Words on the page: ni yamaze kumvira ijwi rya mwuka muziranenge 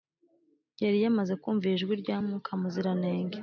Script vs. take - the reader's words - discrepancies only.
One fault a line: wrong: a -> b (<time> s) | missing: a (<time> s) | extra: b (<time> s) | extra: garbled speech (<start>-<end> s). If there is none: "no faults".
wrong: ni -> yari (0.8 s)